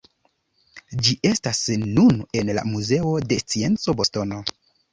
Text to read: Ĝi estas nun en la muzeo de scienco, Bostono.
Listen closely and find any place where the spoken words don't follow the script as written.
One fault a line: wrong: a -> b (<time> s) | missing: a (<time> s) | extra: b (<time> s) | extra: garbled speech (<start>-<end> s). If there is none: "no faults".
no faults